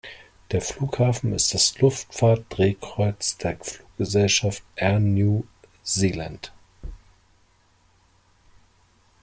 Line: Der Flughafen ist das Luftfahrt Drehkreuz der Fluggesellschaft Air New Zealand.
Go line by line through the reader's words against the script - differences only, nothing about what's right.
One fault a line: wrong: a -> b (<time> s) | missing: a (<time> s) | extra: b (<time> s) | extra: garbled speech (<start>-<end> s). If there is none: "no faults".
no faults